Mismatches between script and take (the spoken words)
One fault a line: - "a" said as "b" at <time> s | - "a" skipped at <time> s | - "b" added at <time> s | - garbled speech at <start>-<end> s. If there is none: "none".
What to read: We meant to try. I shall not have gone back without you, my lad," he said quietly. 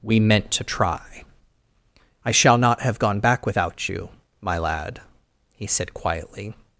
none